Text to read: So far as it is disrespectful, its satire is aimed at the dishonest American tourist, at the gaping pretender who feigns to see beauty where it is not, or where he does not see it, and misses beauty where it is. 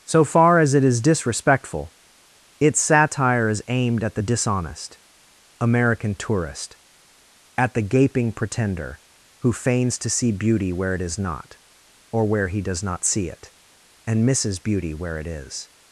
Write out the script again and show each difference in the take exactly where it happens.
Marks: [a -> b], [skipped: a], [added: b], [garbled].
So far as it is disrespectful, its satire is aimed at the dishonest American tourist, at the gaping pretender who feigns to see beauty where it is not, or where he does not see it, and misses beauty where it is.